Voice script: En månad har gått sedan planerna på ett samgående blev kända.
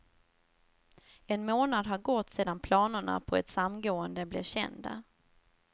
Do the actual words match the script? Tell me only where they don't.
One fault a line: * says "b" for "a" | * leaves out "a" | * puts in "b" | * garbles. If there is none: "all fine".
all fine